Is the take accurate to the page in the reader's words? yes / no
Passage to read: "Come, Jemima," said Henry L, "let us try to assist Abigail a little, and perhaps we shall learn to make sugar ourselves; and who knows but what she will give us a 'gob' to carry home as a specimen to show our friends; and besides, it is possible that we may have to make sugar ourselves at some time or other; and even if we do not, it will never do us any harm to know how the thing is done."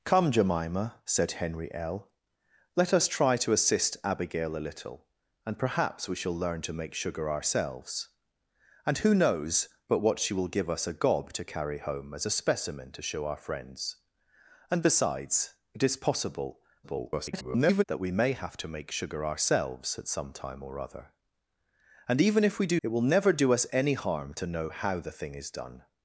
no